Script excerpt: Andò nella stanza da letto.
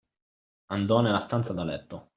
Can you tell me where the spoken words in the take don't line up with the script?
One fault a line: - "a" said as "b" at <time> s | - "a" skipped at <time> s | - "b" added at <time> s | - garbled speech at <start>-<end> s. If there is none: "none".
none